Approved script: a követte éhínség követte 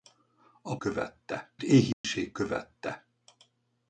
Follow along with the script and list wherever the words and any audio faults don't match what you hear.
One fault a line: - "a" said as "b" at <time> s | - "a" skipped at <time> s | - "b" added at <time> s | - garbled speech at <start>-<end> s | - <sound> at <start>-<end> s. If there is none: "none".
- dropout at 1.9-2.0 s